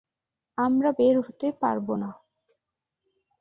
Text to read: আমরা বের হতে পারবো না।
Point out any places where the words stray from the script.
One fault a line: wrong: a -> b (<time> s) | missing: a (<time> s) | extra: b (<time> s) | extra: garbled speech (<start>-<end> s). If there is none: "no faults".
no faults